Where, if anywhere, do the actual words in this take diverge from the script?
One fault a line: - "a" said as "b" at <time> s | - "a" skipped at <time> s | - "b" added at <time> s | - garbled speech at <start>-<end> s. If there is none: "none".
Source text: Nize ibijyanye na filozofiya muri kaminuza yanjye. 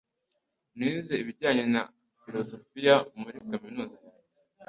none